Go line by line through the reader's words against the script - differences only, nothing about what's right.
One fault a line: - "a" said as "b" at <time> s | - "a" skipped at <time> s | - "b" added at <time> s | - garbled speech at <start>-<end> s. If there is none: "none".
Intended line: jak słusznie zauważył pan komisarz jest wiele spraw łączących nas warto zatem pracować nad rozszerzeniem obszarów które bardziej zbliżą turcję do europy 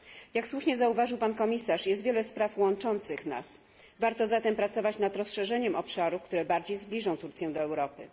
none